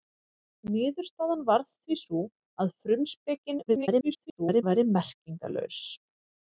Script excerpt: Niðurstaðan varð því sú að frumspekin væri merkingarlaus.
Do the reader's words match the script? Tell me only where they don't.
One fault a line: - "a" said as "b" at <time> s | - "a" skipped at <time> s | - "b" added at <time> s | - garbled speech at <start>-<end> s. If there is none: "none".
- garbled speech at 3.7-4.6 s